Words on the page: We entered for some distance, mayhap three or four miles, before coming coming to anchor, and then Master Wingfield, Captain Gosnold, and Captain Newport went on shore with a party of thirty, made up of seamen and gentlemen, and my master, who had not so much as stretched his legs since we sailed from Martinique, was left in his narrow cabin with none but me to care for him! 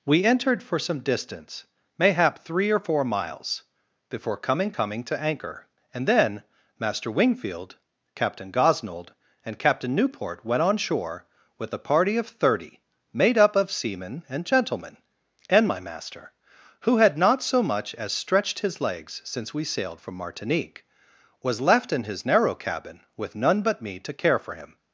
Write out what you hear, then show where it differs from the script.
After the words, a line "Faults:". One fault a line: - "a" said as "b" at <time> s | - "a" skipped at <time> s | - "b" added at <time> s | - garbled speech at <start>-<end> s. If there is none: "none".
We entered for some distance, mayhap three or four miles, before coming coming to anchor, and then Master Wingfield, Captain Gosnold, and Captain Newport went on shore with a party of thirty, made up of seamen and gentlemen, and my master, who had not so much as stretched his legs since we sailed from Martinique, was left in his narrow cabin with none but me to care for him!
Faults:
none